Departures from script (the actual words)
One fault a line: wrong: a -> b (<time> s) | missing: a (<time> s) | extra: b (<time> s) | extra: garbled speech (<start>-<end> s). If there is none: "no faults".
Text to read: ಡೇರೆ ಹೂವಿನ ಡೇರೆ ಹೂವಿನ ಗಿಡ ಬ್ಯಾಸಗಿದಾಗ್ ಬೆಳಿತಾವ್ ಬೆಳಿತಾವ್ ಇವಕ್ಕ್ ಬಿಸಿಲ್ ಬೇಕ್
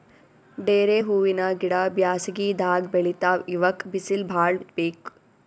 missing: ಡೇರೆ ಹೂವಿನ (1.4 s)
missing: ಬೆಳಿತಾವ್ (3.4 s)
extra: ಭಾಳ್ (4.3 s)